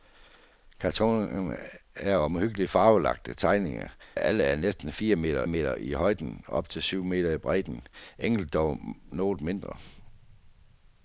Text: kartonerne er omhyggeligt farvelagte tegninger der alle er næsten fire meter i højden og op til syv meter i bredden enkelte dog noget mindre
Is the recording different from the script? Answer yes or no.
yes